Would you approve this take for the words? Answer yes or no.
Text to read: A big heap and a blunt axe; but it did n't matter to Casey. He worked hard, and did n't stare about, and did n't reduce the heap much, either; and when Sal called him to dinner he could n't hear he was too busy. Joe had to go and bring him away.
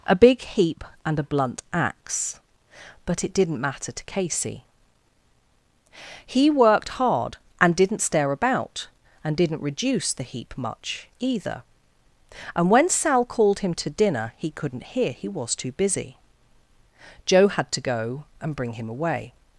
yes